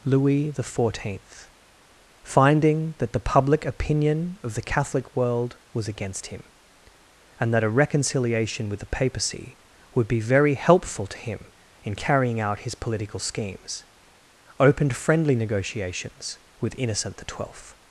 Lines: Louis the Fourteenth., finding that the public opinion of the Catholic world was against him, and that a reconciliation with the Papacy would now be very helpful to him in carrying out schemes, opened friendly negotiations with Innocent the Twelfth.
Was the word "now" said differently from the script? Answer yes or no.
yes